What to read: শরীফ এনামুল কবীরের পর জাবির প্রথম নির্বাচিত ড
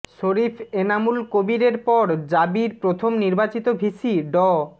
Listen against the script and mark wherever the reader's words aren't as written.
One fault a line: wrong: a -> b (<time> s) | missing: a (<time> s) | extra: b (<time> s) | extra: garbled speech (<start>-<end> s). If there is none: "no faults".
extra: ভিসি (3.8 s)